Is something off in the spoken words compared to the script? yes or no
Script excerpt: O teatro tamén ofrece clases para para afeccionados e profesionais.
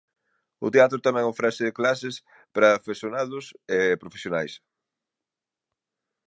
yes